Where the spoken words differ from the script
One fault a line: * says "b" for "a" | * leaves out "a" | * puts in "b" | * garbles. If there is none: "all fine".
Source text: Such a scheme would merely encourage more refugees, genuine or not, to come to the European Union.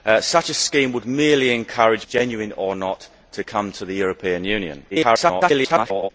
* leaves out "more refugees"
* garbles